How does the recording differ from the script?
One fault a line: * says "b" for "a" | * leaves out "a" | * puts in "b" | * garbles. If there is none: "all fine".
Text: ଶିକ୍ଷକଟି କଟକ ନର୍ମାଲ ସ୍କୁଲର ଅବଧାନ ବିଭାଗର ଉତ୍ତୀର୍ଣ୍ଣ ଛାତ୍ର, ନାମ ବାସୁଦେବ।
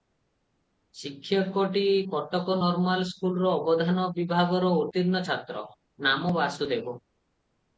all fine